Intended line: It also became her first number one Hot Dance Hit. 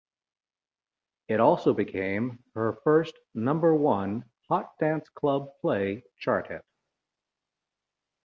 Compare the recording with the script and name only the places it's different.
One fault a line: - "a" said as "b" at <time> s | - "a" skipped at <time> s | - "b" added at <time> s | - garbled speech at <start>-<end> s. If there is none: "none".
- "Club Play Chart" added at 5.1 s